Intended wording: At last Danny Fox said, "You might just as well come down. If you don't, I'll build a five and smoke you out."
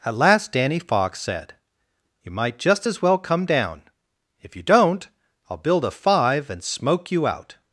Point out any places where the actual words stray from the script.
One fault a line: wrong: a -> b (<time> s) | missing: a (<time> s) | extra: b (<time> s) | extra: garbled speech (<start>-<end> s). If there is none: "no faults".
no faults